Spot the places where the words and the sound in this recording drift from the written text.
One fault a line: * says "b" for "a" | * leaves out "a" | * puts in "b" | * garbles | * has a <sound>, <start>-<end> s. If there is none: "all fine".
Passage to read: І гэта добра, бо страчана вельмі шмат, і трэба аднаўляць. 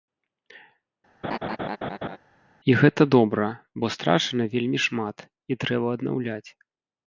* has a laugh, 1.2-2.2 s